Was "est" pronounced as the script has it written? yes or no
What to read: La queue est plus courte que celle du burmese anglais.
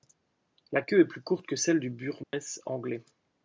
yes